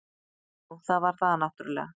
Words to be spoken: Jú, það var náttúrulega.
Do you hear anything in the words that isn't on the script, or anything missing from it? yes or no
yes